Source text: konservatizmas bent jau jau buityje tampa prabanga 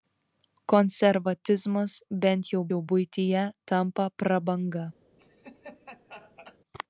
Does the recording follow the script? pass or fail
pass